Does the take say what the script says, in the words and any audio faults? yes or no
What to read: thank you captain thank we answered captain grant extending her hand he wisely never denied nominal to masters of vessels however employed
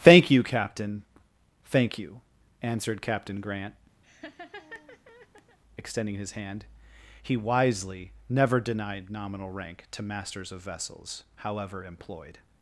no